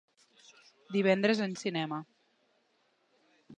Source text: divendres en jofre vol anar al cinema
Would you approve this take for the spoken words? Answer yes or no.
no